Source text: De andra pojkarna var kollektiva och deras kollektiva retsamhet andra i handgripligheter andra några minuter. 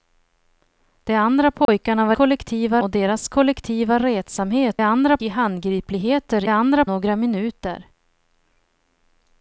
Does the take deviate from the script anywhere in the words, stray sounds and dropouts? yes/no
yes